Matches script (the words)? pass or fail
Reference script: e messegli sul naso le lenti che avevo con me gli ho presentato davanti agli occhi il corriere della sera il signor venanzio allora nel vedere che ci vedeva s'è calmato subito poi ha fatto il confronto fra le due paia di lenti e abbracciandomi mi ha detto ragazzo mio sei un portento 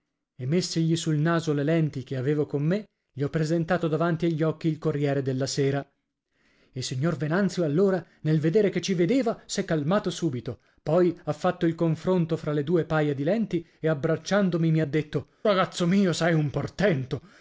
pass